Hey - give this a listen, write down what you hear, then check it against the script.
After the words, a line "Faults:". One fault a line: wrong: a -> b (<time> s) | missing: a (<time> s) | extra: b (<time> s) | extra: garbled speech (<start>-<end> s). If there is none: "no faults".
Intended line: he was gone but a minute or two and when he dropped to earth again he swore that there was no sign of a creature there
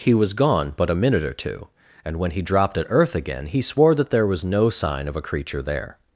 he was gone but a minute or two and when he dropped at earth again he swore that there was no sign of a creature there
Faults:
wrong: to -> at (2.8 s)